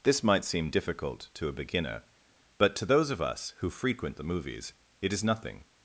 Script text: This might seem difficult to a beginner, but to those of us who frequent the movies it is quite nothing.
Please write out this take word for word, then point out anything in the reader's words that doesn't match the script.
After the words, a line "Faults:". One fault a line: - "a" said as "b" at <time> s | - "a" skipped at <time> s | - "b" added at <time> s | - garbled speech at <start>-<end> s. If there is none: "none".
This might seem difficult to a beginner, but to those of us who frequent the movies it is nothing.
Faults:
- "quite" skipped at 5.2 s